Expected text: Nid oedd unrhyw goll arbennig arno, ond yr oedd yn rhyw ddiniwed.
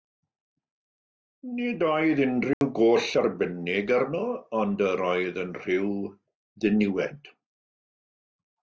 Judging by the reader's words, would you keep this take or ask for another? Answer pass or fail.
pass